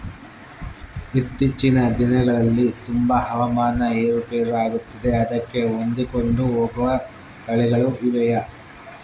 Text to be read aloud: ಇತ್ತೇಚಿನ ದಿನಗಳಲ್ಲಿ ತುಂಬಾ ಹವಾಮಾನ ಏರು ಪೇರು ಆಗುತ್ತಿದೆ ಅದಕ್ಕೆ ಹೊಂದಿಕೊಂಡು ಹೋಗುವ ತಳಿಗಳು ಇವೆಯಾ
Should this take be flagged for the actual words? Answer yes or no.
no